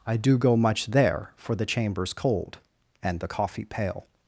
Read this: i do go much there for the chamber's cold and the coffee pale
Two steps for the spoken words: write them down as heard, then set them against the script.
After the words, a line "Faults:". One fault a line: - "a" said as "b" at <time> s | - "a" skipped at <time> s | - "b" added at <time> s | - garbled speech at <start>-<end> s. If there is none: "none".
i do go much there for the chamber's cold and the coffee pale
Faults:
none